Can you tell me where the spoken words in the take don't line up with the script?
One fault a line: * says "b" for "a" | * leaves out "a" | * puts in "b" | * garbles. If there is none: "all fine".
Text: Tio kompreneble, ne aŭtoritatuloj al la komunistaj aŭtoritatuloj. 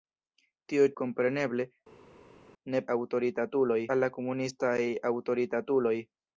all fine